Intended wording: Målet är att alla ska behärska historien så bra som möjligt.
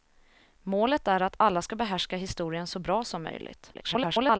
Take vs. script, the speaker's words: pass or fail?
fail